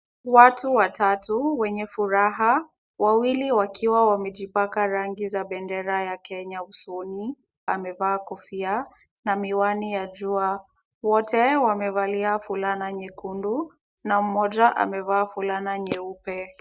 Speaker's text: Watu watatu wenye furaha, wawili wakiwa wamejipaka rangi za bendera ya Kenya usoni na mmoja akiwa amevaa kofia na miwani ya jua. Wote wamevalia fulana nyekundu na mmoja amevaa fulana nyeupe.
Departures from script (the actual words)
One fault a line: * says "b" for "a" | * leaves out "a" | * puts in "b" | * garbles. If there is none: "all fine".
* leaves out "na mmoja akiwa"